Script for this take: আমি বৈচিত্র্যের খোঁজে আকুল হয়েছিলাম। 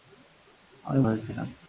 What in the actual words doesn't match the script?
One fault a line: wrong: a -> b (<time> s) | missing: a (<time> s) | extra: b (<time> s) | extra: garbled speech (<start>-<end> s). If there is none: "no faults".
missing: বৈচিত্র্যের খোঁজে আকুল (1.0 s)